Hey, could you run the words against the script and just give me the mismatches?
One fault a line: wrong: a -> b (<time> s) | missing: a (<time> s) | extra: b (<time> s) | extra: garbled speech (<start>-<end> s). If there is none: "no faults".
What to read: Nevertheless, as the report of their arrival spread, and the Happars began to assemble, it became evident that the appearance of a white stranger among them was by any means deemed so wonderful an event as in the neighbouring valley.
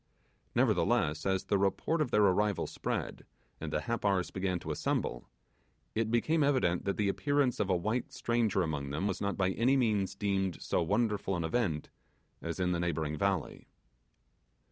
extra: not (9.2 s)